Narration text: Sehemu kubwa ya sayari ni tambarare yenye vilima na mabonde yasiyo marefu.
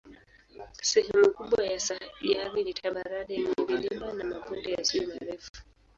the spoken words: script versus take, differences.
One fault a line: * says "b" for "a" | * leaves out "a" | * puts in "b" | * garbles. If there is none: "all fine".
all fine